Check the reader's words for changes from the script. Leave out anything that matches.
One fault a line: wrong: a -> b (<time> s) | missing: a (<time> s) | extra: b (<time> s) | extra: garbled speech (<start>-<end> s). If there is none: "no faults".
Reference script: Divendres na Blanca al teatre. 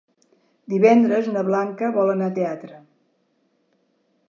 extra: vol anar (2.0 s)